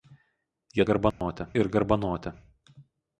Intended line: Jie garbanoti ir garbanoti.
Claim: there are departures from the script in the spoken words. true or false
false